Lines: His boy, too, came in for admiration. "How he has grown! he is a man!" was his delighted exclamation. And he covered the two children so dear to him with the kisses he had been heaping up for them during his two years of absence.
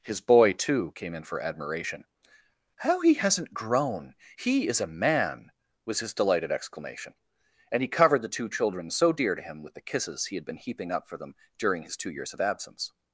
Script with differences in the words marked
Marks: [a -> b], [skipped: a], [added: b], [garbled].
His boy, too, came in for admiration. "How he [has -> hasn't] grown! he is a man!" was his delighted exclamation. And he covered the two children so dear to him with the kisses he had been heaping up for them during his two years of absence.